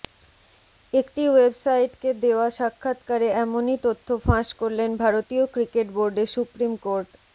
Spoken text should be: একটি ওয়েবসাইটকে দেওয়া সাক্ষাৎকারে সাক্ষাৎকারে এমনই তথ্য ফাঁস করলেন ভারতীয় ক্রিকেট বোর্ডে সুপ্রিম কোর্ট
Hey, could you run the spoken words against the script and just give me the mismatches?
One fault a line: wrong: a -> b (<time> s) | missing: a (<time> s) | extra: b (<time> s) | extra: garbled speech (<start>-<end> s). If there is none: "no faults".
missing: সাক্ষাৎকারে (3.3 s)